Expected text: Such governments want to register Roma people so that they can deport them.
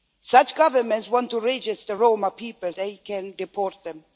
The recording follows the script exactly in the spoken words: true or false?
false